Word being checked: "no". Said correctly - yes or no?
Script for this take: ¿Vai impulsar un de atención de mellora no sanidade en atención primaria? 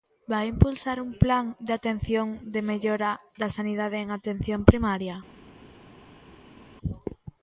no